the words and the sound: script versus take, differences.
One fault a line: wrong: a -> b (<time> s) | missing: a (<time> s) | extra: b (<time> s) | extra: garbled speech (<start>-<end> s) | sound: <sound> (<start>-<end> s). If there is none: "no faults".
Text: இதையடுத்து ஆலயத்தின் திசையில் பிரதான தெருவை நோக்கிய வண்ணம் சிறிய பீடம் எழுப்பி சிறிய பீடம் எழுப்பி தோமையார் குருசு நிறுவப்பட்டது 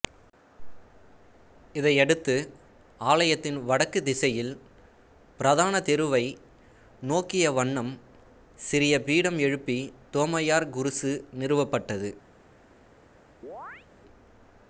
extra: வடக்கு (3.6 s)
missing: சிறிய பீடம் எழுப்பி (9.8 s)
sound: chirp (13.4-13.9 s)